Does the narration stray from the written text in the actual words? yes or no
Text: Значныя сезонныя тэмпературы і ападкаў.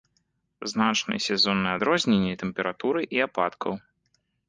yes